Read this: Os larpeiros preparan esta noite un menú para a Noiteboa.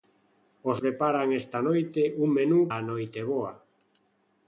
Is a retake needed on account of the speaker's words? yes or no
yes